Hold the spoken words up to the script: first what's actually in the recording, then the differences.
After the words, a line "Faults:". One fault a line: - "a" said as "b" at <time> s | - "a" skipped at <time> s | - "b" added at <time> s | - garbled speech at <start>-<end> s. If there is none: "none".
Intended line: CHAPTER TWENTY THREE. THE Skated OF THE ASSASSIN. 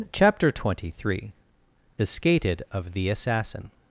CHAPTER TWENTY THREE. THE Skated OF THE ASSASSIN.
Faults:
none